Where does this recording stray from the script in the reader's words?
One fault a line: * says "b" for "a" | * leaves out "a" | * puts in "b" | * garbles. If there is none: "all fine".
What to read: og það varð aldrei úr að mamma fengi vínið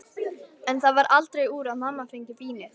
* says "en" for "og"